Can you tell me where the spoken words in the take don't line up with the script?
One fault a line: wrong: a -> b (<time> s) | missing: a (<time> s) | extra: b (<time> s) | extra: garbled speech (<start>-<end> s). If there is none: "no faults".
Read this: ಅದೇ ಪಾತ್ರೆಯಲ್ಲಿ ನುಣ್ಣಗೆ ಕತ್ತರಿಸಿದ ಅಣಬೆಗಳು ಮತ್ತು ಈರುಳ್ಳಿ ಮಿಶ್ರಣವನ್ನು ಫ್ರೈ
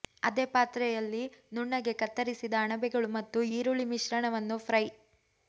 no faults